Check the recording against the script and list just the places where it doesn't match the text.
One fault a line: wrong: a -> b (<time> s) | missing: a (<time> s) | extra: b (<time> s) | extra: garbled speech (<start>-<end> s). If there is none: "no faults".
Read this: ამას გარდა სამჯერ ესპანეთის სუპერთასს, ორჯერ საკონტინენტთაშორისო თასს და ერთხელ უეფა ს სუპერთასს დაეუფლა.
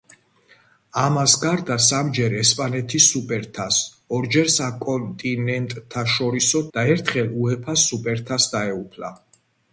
missing: თასს (6.6 s)